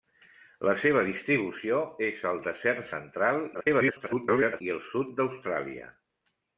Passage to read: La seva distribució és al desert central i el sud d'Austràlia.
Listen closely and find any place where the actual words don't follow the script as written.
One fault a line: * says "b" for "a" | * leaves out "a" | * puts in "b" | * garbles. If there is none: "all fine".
* garbles